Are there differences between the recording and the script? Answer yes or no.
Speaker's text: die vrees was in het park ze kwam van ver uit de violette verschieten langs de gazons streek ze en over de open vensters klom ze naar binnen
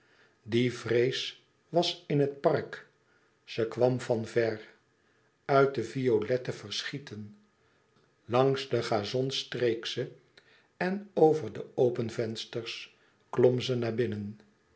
no